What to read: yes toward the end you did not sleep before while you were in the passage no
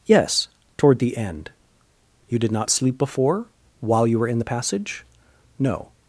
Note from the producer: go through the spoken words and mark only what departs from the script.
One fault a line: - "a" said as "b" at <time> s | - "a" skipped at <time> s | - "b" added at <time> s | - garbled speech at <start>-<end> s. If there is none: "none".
none